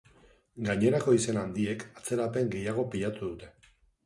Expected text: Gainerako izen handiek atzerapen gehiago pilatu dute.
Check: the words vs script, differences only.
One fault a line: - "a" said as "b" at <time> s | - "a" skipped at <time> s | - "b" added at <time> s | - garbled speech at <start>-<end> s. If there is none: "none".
none